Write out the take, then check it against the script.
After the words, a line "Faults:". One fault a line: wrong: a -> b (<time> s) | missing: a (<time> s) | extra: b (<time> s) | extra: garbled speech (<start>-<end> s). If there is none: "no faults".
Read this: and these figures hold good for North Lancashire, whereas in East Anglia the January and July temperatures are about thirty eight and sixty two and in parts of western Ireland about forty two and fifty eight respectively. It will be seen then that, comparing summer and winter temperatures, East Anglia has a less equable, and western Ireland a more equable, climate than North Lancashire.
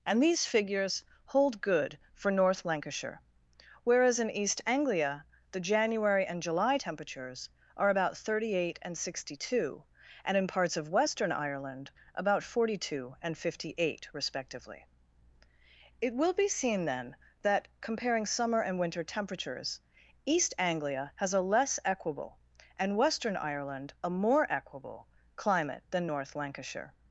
and these figures hold good for North Lancashire, whereas in East Anglia the January and July temperatures are about thirty eight and sixty two and in parts of western Ireland about forty two and fifty eight respectively. It will be seen then that, comparing summer and winter temperatures, East Anglia has a less equable, and western Ireland a more equable, climate than North Lancashire.
Faults:
no faults